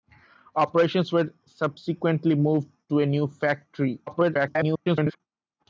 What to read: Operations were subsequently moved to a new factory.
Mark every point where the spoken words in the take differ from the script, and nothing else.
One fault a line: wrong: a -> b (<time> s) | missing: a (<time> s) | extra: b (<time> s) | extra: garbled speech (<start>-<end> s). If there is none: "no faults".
extra: garbled speech (4.1-5.2 s)